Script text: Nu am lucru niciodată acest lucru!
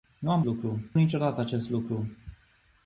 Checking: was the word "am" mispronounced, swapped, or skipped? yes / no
no